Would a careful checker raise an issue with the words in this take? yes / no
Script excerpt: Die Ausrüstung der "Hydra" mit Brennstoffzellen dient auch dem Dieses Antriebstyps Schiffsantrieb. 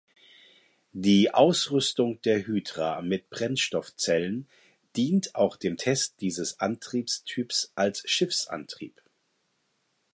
yes